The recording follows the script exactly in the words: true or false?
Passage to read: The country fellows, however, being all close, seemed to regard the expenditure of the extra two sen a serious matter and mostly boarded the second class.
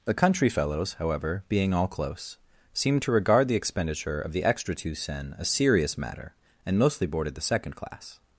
true